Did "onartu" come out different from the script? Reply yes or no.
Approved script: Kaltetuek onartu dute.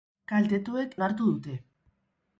no